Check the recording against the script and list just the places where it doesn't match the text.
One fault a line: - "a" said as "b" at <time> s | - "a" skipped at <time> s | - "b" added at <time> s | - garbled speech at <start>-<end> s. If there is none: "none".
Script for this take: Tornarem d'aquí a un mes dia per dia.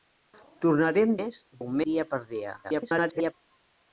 - "d'aquí" said as "mes" at 1.2 s
- "mes" skipped at 1.8 s
- garbled speech at 2.6-3.3 s